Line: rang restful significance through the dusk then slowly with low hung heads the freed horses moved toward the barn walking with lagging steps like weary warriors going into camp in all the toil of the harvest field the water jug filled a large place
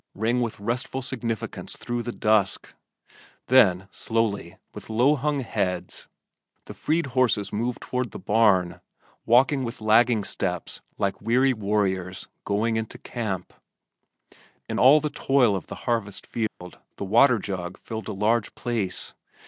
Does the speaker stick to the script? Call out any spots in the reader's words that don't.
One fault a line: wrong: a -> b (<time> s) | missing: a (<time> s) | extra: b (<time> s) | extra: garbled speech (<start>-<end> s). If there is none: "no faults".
extra: with (0.4 s)